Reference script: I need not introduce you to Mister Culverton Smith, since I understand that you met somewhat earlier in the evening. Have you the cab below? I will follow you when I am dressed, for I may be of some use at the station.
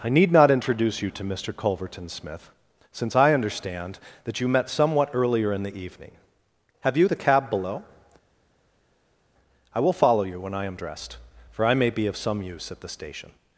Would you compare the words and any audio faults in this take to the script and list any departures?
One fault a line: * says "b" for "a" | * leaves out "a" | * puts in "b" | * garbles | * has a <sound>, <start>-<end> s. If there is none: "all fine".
all fine